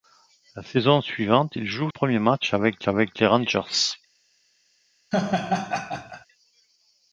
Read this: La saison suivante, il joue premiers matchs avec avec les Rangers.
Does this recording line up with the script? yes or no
yes